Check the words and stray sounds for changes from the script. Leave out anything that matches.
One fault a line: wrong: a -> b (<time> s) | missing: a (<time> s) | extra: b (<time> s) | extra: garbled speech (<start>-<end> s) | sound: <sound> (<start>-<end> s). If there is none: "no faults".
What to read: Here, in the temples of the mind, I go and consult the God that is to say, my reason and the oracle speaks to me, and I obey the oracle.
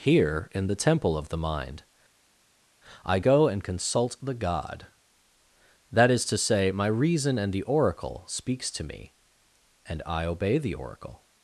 wrong: temples -> temple (0.8 s)